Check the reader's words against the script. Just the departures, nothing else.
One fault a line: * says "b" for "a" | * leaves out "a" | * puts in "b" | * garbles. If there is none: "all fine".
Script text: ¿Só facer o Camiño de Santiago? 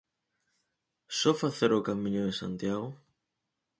all fine